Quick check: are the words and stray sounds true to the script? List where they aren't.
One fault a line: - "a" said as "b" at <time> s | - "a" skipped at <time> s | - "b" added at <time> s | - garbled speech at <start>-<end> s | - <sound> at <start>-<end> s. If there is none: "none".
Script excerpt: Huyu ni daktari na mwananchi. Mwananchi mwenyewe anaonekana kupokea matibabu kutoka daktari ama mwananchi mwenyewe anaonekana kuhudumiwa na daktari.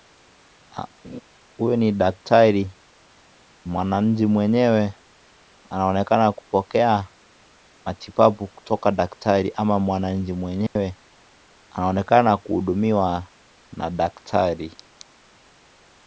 - laugh at 1.0-1.2 s
- "na mwananchi" skipped at 2.8 s
- dropout at 10.7-10.8 s